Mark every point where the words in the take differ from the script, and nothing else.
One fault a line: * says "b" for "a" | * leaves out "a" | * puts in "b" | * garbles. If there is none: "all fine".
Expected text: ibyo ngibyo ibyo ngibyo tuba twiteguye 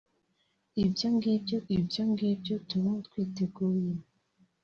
all fine